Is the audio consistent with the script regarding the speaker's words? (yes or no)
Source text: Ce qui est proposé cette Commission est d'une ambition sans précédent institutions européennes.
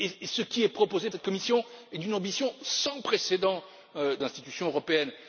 yes